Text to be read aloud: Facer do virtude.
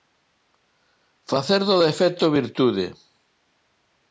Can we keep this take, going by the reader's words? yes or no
no